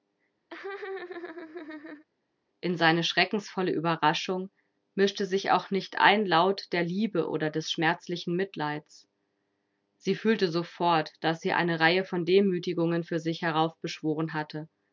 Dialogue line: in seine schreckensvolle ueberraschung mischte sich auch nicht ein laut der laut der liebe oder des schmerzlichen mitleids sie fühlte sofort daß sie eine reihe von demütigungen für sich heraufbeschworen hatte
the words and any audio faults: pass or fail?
fail